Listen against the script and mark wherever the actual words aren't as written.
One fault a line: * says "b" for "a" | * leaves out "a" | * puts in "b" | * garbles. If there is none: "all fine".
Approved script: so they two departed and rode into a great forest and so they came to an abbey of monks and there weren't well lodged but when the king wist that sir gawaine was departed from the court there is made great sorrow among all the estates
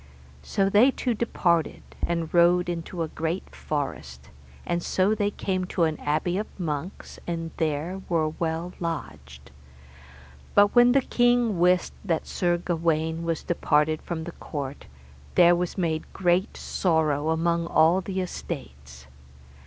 * says "were" for "weren't"
* says "was" for "is"